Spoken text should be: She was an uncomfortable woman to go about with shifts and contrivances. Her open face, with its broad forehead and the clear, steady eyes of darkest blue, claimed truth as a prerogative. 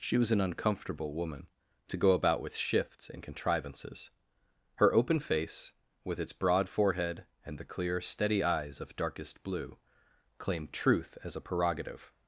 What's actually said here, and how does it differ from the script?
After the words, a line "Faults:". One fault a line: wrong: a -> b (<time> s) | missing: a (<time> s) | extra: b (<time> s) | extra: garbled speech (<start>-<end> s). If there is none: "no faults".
She was an uncomfortable woman to go about with shifts and contrivances. Her open face, with its broad forehead and the clear, steady eyes of darkest blue, claimed truth as a prerogative.
Faults:
no faults